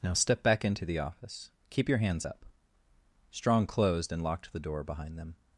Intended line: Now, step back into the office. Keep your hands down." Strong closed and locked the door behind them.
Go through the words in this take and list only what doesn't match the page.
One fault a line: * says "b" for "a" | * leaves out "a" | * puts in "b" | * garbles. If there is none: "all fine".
* says "up" for "down"